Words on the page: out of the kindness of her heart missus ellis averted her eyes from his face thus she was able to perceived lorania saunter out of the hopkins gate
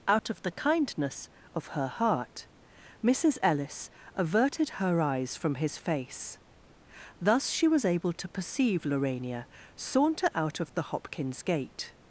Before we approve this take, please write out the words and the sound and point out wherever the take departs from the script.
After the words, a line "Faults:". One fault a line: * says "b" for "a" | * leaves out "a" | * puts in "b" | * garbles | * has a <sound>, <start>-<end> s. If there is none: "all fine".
out of the kindness of her heart missus ellis averted her eyes from his face thus she was able to perceive lorania saunter out of the hopkins gate
Faults:
* has a dropout, 0.2-0.2 s
* says "perceive" for "perceived"